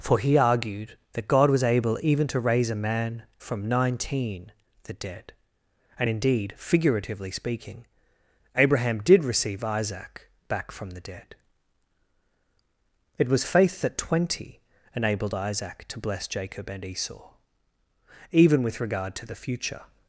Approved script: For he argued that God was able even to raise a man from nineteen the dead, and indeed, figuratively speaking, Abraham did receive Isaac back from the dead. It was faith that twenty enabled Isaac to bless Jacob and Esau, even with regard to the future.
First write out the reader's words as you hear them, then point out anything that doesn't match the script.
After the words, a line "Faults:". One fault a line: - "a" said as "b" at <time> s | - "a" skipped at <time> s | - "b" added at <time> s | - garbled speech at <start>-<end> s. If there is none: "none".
For he argued that God was able even to raise a man from nineteen the dead, and indeed, figuratively speaking, Abraham did receive Isaac back from the dead. It was faith that twenty enabled Isaac to bless Jacob and Esau, even with regard to the future.
Faults:
none